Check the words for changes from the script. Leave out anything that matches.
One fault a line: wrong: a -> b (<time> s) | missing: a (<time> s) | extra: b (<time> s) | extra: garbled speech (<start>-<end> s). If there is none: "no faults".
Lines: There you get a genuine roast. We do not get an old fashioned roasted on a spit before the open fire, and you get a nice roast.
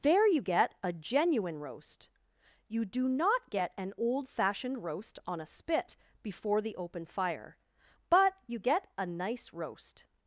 wrong: We -> You (2.7 s)
wrong: roasted -> roast (4.8 s)
wrong: and -> but (8.1 s)